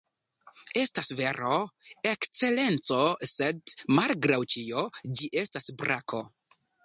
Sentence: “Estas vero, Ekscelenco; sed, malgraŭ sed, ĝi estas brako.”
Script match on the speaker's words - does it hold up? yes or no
no